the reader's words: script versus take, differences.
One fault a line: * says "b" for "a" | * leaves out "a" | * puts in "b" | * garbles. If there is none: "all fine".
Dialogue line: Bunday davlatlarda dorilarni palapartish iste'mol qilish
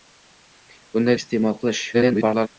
* leaves out "davlatlarda dorilarni palapartish"
* garbles